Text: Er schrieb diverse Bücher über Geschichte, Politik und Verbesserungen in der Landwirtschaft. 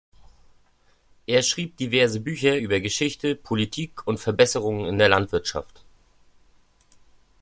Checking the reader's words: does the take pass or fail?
pass